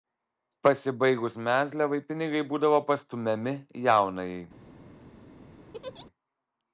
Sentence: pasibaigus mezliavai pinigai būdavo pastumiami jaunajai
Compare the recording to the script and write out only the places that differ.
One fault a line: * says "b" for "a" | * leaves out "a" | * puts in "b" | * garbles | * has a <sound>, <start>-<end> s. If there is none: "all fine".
* has a laugh, 5.7-6.1 s